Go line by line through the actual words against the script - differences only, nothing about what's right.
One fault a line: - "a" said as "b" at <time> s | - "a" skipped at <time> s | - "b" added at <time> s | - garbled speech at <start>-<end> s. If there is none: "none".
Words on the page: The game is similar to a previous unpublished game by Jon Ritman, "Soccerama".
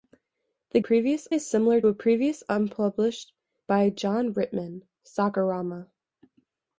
- "game" said as "previous" at 0.8 s
- "to" skipped at 1.8 s
- "game" skipped at 3.3 s